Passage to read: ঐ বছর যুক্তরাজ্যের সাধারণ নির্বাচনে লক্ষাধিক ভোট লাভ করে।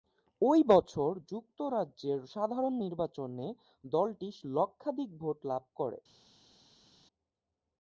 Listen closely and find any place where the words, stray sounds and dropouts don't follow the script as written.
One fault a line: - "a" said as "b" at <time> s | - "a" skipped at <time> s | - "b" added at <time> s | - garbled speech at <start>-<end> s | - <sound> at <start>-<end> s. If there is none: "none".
- "দলটি" added at 3.8 s